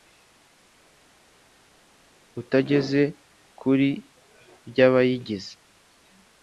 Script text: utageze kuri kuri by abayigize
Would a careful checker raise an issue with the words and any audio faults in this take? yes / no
yes